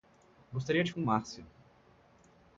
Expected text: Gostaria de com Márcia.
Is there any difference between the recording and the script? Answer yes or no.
no